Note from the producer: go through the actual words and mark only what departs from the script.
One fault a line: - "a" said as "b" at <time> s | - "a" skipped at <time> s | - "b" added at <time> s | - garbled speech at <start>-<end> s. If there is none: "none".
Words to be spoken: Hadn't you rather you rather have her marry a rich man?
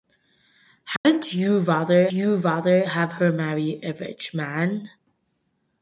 none